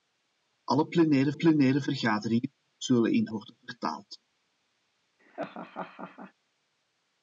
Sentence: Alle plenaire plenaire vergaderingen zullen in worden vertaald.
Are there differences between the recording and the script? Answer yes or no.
no